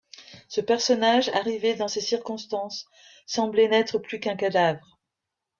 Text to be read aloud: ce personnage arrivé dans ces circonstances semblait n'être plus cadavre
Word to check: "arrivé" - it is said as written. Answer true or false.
true